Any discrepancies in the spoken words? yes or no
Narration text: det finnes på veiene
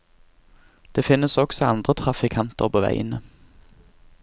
yes